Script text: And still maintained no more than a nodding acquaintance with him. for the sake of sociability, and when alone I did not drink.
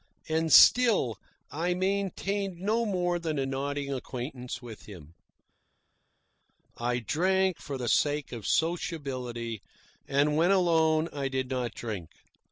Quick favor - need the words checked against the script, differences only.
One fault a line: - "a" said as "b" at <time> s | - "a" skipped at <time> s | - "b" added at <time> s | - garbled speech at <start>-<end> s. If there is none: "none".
- "I" added at 1.5 s
- "I drank" added at 6.8 s